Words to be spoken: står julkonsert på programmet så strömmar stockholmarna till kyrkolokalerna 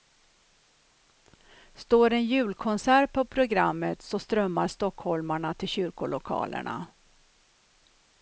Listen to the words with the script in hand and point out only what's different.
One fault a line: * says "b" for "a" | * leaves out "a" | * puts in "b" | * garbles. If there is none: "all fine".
* puts in "en"